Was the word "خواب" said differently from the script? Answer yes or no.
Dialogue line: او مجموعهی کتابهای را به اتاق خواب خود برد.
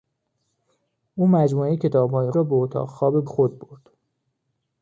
no